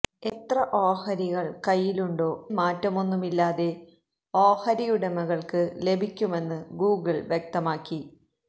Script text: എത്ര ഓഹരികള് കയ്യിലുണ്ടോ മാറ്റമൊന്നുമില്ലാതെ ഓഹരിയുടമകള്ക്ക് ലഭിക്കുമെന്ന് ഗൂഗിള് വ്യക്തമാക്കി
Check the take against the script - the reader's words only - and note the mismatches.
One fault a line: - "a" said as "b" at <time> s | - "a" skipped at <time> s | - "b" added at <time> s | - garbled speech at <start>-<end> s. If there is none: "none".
none